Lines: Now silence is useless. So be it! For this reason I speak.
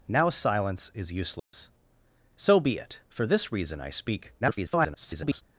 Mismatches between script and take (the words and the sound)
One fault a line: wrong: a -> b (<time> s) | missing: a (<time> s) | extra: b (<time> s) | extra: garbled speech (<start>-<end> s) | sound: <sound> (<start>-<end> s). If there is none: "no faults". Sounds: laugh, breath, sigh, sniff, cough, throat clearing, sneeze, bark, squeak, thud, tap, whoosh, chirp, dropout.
sound: dropout (1.4-1.5 s)
extra: garbled speech (4.4-5.4 s)